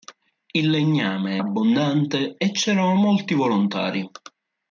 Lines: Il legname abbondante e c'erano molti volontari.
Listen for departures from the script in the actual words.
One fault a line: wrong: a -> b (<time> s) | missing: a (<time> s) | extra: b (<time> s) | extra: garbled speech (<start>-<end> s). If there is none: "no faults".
no faults